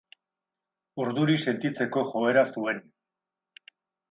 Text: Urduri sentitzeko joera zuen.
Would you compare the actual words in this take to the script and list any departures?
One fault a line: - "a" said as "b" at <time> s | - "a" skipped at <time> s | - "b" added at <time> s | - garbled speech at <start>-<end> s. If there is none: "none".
none